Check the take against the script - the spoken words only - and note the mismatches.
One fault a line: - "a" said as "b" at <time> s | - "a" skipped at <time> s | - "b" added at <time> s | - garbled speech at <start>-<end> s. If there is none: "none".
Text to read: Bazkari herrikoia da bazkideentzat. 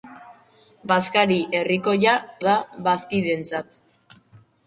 none